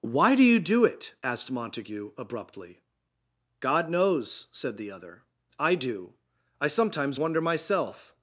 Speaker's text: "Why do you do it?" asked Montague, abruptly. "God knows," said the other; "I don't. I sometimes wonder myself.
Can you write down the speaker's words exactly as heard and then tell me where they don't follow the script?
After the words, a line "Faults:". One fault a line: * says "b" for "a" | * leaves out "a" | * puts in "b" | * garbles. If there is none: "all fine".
"Why do you do it?" asked Montague, abruptly. "God knows," said the other; "I do. I sometimes wonder myself.
Faults:
* says "do" for "don't"